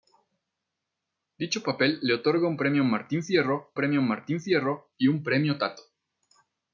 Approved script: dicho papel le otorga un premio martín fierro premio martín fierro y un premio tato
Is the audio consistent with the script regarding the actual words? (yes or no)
yes